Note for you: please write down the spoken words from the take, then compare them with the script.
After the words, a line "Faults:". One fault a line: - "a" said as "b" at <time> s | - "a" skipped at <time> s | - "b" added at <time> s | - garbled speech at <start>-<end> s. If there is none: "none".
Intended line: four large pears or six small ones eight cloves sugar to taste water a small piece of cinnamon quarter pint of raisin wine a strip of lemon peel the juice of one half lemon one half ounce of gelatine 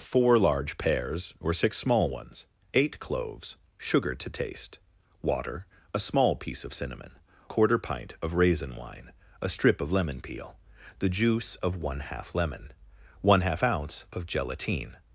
four large pears or six small ones eight cloves sugar to taste water a small piece of cinnamon quarter pint of raisin wine a strip of lemon peel the juice of one half lemon one half ounce of gelatine
Faults:
none